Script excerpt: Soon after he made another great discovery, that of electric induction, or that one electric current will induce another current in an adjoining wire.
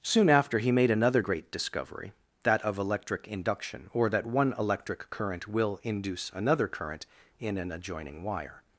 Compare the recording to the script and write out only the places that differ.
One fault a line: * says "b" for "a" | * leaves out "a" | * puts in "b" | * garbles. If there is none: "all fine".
all fine